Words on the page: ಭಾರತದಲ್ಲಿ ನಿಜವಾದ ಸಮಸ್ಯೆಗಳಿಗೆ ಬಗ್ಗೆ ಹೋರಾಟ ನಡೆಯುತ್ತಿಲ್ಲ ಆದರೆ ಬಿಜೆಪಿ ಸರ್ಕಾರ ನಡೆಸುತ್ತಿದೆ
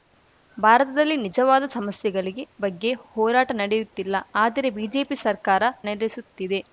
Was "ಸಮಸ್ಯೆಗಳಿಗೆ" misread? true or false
false